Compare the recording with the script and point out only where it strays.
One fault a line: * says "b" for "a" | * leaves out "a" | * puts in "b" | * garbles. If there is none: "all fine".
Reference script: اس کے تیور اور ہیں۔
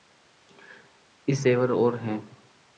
* leaves out "کے"